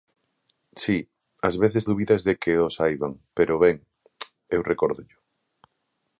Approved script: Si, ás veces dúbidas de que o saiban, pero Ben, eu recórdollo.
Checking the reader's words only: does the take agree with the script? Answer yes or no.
yes